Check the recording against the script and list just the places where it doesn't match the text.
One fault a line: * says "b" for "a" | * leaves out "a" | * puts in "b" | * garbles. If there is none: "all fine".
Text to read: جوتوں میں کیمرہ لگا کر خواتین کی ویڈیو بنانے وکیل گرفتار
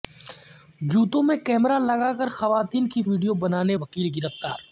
all fine